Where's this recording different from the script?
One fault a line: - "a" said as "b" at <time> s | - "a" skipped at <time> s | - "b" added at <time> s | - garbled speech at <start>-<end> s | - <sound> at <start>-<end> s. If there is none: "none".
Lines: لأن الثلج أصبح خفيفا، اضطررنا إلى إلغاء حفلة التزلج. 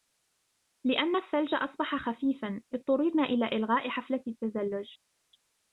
none